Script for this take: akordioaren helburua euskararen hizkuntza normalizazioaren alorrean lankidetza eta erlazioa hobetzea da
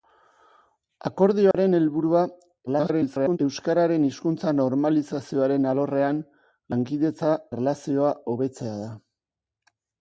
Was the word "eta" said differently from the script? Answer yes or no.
yes